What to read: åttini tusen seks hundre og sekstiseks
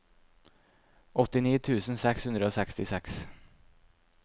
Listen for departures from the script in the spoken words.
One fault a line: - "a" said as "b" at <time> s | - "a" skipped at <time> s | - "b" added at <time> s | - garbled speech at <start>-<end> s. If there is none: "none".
none